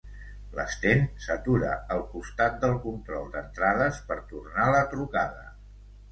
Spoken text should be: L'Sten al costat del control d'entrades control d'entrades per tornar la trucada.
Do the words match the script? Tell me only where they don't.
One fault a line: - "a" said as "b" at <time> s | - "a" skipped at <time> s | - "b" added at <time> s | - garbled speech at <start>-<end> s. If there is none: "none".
- "s'atura" added at 1.2 s
- "control d'entrades" skipped at 4.0 s